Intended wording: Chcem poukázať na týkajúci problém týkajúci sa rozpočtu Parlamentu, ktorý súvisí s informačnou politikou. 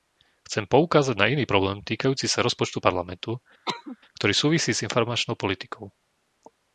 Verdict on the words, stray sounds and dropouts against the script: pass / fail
fail